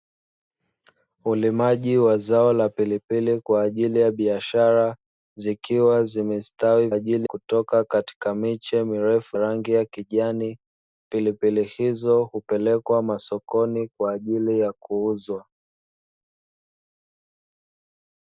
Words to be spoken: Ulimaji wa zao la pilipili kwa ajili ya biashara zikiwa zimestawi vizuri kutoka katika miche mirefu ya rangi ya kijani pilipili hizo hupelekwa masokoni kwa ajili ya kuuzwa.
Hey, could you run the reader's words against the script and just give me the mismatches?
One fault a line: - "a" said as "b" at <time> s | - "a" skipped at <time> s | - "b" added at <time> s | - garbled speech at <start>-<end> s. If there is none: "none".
- "vizuri" said as "ajili" at 6.9 s
- "ya" skipped at 9.4 s